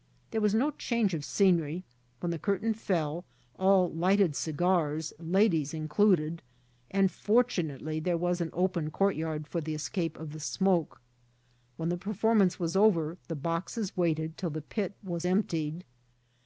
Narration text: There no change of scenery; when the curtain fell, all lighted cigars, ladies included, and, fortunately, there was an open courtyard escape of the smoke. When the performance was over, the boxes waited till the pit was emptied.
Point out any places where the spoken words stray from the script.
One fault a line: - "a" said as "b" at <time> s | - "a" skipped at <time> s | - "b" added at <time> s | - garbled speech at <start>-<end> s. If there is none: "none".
- "was" added at 0.4 s
- "for the" added at 9.5 s